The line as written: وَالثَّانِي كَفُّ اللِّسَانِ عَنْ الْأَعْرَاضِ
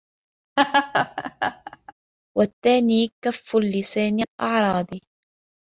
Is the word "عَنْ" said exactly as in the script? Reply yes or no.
no